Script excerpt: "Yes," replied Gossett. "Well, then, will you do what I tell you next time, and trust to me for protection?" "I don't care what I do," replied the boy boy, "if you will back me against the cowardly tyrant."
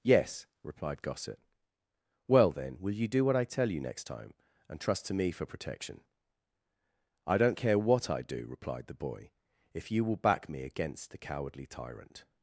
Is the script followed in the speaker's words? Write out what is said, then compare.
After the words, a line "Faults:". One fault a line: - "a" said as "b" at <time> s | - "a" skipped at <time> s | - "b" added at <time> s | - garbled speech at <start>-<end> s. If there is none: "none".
"Yes," replied Gossett. "Well, then, will you do what I tell you next time, and trust to me for protection?" "I don't care what I do," replied the boy, "if you will back me against the cowardly tyrant."
Faults:
- "boy" skipped at 9.3 s